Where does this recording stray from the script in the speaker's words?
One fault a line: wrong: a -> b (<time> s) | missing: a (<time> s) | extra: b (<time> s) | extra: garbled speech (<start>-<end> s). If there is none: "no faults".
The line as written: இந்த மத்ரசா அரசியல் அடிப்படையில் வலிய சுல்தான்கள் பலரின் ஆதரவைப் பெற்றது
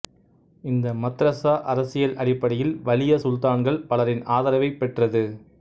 no faults